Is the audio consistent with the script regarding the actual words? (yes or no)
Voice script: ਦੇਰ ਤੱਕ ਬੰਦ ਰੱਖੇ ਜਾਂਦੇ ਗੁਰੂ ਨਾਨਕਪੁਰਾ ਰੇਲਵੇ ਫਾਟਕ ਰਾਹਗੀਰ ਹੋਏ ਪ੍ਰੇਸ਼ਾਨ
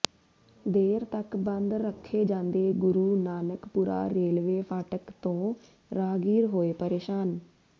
no